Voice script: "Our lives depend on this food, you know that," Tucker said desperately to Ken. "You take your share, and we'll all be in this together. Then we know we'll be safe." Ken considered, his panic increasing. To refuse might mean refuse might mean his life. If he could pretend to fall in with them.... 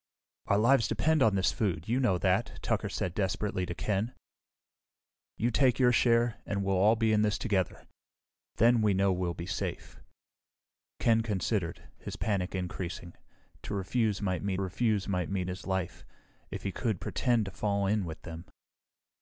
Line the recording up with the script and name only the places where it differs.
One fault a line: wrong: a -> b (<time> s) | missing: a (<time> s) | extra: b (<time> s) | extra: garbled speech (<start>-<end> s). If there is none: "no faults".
no faults